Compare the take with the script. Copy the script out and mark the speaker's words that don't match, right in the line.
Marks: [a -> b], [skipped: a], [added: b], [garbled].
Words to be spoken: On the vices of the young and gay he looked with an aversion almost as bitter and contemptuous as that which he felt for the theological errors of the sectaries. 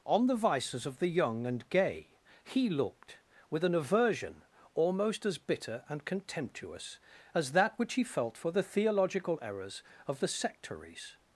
On the vices of the young and gay he looked with an aversion almost as bitter and contemptuous as that which he felt for the theological errors of the sectaries.